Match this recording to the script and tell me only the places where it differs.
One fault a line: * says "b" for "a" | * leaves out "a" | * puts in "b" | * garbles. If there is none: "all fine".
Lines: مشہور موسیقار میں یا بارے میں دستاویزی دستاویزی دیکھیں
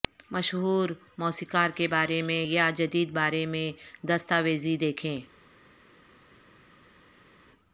* puts in "کے بارے"
* puts in "جدید"
* leaves out "دستاویزی"